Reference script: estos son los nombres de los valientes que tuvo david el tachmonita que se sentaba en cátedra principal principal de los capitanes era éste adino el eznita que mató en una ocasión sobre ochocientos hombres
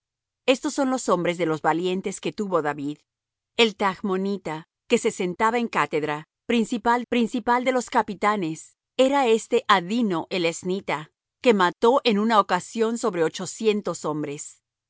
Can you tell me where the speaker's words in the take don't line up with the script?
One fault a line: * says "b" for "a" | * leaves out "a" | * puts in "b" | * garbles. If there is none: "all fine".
all fine